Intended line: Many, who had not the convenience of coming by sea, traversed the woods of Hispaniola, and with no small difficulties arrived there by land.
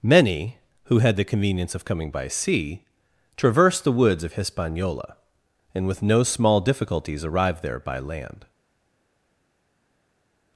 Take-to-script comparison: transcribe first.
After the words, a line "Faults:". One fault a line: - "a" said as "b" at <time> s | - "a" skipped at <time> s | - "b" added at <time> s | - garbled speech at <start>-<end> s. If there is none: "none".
Many, who had the convenience of coming by sea, traversed the woods of Hispaniola, and with no small difficulties arrived there by land.
Faults:
- "not" skipped at 1.1 s